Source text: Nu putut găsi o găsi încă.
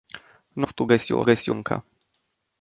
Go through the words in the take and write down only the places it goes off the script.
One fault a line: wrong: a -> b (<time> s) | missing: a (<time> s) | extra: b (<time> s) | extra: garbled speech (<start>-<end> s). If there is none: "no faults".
no faults